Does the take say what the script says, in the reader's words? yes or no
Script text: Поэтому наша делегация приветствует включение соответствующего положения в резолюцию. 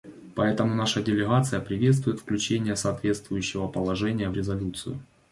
yes